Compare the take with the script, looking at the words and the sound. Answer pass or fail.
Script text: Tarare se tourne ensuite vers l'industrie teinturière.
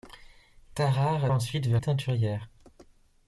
fail